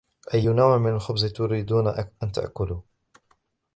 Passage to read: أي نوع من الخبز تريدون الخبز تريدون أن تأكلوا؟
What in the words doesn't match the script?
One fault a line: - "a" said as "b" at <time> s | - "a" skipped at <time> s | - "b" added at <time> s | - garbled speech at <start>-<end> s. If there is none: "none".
- "الخبز تريدون" skipped at 1.9 s